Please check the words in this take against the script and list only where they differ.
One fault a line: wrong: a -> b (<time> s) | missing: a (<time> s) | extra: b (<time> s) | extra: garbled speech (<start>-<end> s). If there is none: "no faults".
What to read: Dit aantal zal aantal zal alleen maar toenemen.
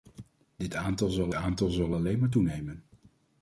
no faults